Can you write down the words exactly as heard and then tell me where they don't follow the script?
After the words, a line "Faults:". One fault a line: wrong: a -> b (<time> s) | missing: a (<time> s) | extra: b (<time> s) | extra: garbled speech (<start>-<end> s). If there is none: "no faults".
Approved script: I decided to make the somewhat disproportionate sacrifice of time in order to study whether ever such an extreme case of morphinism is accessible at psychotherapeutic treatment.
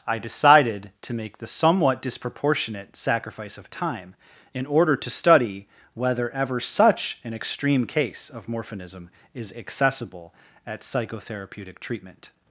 I decided to make the somewhat disproportionate sacrifice of time in order to study whether ever such an extreme case of morphinism is accessible at psychotherapeutic treatment.
Faults:
no faults